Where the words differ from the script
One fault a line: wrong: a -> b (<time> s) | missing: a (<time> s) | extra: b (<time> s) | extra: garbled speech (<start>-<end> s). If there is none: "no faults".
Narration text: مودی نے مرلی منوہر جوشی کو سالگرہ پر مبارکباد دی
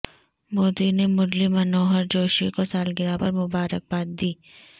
no faults